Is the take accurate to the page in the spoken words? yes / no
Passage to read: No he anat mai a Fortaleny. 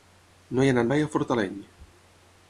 yes